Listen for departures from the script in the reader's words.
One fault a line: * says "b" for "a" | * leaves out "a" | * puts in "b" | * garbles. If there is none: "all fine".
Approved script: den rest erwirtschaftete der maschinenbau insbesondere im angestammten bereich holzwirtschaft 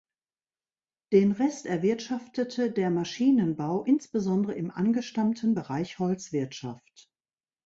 all fine